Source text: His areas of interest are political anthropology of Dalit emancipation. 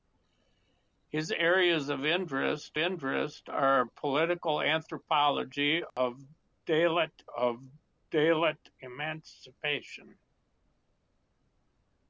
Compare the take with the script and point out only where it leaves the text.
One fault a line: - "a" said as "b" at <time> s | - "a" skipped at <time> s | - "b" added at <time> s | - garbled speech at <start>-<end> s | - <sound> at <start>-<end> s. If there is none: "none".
- "interest" added at 2.8 s
- dropout at 5.9-6.0 s
- "of Dalit" added at 7.3 s